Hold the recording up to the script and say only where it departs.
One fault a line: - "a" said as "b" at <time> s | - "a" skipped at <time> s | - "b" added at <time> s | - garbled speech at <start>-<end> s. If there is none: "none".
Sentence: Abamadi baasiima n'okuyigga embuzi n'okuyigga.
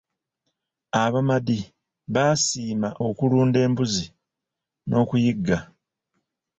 - "n'okuyigga" said as "okulunda" at 3.1 s